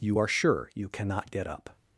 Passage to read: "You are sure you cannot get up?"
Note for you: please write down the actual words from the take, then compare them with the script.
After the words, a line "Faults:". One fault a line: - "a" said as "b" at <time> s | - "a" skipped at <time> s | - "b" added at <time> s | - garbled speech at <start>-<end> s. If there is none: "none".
"You are sure you cannot get up?"
Faults:
none